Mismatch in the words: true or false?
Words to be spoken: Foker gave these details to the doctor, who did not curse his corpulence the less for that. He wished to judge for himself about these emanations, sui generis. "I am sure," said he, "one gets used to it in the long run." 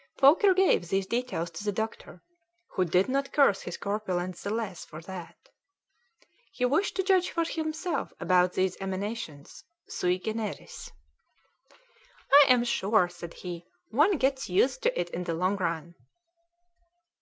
false